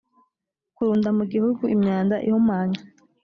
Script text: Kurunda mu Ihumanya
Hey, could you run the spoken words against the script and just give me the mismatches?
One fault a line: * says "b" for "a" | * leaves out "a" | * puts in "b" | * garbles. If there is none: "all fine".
* puts in "Gihugu imyanda"